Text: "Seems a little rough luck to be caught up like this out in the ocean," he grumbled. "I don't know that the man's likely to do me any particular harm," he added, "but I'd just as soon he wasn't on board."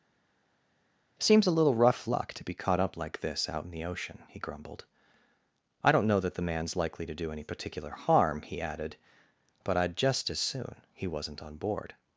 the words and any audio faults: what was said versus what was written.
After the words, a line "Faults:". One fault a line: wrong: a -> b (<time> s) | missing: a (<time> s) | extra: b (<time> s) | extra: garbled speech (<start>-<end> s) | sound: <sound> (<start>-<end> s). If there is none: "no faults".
"Seems a little rough luck to be caught up like this out in the ocean," he grumbled. "I don't know that the man's likely to do any particular harm," he added, "but I'd just as soon he wasn't on board."
Faults:
missing: me (7.3 s)